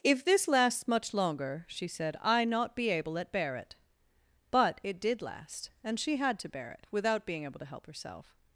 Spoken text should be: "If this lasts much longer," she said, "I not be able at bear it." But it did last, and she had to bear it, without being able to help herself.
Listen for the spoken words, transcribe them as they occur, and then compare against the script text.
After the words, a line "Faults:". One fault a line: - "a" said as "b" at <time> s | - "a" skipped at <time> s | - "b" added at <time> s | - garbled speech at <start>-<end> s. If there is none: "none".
"If this lasts much longer," she said, "I not be able at bear it." But it did last, and she had to bear it, without being able to help herself.
Faults:
none